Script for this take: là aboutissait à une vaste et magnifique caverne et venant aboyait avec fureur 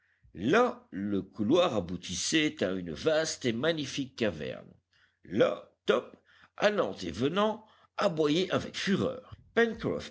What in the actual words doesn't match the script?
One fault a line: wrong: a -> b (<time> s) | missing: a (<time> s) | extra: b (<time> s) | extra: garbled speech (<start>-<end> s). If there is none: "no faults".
extra: le couloir (0.9 s)
extra: là top allant (5.2 s)